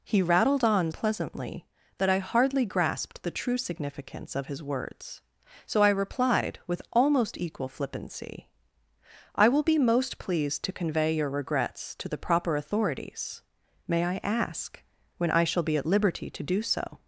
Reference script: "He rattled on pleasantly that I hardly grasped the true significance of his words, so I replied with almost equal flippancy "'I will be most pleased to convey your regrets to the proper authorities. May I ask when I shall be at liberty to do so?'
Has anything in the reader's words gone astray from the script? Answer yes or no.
no